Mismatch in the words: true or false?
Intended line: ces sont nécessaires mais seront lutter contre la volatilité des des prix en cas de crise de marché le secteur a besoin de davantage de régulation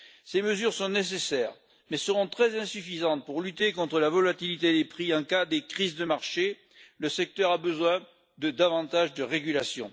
true